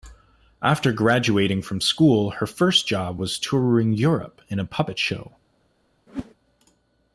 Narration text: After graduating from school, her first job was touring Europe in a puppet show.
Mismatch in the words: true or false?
false